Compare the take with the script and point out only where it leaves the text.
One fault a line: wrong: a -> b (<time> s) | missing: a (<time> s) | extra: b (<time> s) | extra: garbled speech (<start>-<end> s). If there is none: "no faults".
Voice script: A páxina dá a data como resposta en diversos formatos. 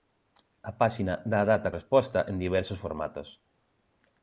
missing: como (1.7 s)